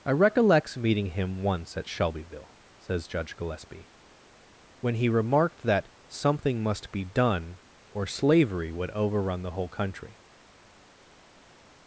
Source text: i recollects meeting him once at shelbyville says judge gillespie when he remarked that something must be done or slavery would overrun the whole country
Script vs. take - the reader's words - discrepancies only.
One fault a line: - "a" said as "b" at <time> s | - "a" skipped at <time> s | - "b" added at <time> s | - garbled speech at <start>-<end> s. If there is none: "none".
none